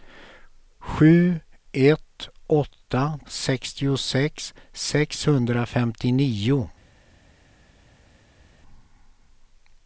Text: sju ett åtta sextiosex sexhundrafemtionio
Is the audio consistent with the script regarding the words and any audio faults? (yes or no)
yes